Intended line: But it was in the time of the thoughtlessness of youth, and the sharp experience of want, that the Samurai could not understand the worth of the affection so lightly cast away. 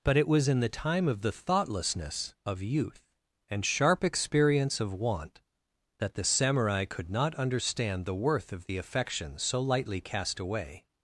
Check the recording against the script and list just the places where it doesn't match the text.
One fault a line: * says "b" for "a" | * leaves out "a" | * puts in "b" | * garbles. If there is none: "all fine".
* leaves out "the"